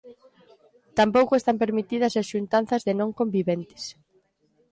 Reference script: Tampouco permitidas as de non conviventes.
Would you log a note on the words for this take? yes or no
yes